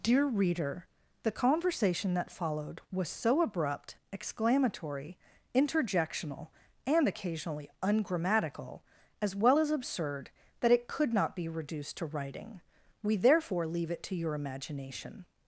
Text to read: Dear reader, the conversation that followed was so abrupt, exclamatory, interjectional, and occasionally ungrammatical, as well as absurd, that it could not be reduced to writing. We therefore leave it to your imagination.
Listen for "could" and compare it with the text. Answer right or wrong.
right